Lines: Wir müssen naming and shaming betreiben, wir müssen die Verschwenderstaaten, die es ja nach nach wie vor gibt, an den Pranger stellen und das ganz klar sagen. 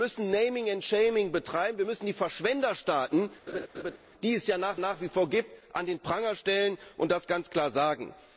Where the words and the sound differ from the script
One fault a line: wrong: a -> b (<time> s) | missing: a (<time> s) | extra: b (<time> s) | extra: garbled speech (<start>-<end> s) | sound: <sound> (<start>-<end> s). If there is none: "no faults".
sound: laugh (3.5-4.0 s)